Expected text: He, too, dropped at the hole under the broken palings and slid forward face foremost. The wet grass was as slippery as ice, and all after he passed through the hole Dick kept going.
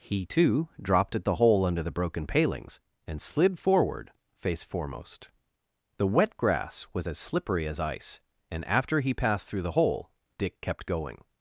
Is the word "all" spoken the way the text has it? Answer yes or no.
no